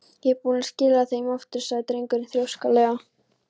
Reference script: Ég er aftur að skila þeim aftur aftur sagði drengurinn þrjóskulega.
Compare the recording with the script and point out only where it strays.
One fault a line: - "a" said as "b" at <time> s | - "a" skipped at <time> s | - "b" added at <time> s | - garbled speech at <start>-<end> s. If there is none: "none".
- "aftur" said as "búinn" at 0.5 s
- "aftur" skipped at 1.6 s